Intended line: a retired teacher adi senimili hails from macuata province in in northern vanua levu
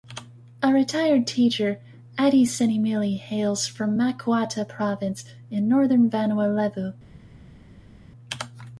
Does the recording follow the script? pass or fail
fail